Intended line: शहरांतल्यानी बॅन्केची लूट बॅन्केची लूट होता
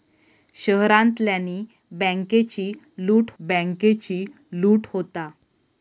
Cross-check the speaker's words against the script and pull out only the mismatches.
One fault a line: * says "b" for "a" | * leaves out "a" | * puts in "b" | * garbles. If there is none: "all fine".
all fine